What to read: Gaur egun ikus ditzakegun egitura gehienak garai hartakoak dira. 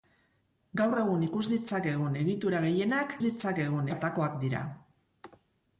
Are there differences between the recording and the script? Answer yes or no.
yes